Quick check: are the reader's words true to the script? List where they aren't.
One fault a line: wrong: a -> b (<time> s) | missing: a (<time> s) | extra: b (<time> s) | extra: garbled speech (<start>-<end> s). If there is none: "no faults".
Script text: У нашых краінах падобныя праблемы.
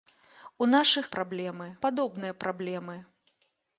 wrong: краінах -> праблемы (1.1 s)